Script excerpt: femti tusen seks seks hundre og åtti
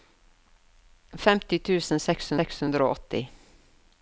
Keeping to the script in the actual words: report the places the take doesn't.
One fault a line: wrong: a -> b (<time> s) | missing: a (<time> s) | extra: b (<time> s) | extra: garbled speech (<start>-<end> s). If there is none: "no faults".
no faults